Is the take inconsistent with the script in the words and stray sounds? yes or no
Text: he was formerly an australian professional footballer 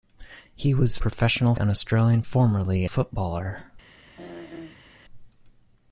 yes